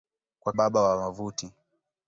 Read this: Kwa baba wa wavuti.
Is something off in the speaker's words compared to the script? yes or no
no